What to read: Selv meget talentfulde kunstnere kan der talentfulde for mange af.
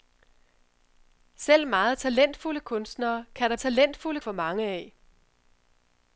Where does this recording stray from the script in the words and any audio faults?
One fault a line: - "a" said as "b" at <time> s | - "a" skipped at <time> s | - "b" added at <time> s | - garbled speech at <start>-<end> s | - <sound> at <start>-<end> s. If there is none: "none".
none